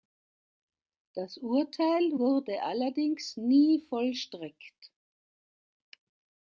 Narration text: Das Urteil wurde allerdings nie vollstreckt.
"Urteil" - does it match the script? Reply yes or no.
yes